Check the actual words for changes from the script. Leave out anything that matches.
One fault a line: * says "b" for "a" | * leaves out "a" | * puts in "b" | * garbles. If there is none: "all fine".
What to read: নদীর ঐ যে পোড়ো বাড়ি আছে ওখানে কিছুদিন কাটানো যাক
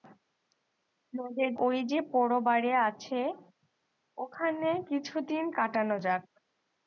all fine